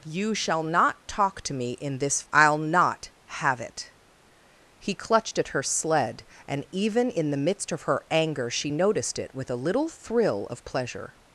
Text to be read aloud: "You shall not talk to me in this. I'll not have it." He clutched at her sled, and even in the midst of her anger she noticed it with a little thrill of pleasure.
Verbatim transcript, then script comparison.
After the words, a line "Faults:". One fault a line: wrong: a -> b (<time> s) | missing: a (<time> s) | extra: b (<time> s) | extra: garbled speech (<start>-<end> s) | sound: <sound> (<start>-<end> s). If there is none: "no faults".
"You shall not talk to me in this. I'll not have it." He clutched at her sled, and even in the midst of her anger she noticed it with a little thrill of pleasure.
Faults:
no faults